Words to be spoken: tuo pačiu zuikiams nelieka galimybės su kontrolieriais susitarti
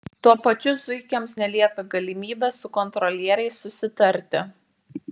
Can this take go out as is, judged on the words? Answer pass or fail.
pass